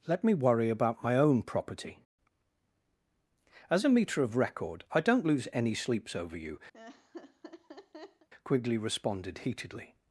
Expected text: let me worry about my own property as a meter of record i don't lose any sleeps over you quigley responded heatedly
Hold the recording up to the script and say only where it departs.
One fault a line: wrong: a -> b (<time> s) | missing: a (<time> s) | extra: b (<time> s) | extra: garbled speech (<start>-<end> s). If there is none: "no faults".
no faults